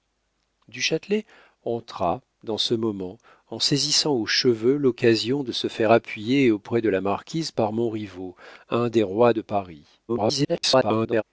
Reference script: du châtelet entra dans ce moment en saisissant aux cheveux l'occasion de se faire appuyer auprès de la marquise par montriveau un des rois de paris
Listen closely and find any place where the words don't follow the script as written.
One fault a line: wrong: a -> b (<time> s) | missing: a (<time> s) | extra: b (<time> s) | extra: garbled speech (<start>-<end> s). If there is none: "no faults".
extra: garbled speech (10.1-11.2 s)